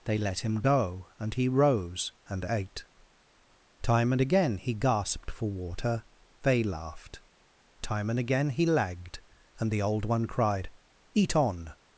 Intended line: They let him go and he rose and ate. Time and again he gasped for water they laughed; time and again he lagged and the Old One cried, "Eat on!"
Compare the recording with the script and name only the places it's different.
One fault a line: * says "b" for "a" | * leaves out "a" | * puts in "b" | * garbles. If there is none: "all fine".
all fine